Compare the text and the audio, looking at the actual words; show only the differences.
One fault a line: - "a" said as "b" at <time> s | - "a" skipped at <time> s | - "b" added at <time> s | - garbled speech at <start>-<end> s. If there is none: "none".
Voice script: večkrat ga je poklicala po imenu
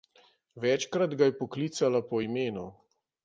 none